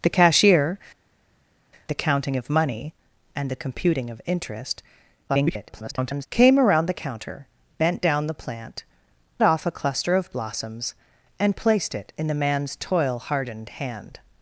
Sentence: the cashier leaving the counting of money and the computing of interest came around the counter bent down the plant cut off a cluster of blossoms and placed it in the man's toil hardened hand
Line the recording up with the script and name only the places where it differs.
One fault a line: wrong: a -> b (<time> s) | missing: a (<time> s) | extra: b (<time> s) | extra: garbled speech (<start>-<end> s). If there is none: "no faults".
missing: leaving (0.8 s)
extra: garbled speech (5.3-6.3 s)
missing: cut (8.8 s)